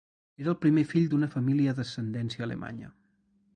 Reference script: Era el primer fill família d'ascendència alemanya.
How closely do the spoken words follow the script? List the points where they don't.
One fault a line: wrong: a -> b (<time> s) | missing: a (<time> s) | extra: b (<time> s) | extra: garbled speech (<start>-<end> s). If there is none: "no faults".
extra: d'una (1.1 s)